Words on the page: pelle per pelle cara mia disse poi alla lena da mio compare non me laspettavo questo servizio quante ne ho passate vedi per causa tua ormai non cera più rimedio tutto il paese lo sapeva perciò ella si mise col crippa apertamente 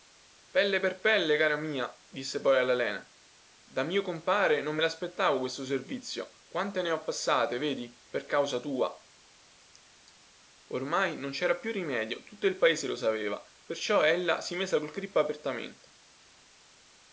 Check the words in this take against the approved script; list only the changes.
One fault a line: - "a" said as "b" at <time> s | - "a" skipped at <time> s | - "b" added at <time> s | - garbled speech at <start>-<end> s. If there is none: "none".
none